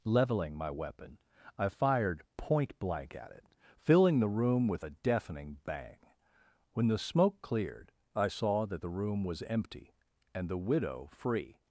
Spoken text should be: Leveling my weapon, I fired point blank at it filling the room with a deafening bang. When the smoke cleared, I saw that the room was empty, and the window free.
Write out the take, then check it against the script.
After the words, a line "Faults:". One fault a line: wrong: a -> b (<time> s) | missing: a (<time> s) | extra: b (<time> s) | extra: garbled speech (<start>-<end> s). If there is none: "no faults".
Leveling my weapon, I fired point blank at it filling the room with a deafening bang. When the smoke cleared, I saw that the room was empty, and the widow free.
Faults:
wrong: window -> widow (10.6 s)